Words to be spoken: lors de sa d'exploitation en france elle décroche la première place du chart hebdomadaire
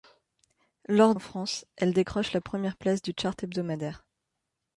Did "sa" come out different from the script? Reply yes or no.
yes